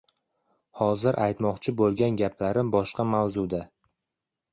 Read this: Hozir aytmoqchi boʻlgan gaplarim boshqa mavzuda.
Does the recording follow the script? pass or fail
pass